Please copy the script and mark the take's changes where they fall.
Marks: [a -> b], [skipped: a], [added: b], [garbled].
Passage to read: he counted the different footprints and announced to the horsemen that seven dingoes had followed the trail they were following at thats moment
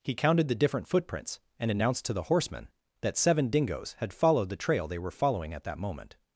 he counted the different footprints and announced to the horsemen that seven dingoes had followed the trail they were following at [thats -> that] moment